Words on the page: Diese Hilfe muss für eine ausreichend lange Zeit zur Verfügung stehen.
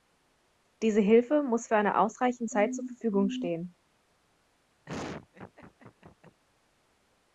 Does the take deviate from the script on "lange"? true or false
true